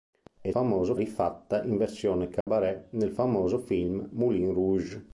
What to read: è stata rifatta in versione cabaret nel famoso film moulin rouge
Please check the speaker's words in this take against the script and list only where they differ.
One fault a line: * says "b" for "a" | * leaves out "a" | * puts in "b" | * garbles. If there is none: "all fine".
* says "famoso" for "stata"